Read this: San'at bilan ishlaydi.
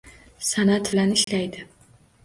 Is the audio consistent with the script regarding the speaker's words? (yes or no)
yes